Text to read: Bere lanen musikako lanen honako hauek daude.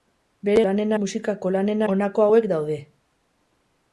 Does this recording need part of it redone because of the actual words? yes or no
no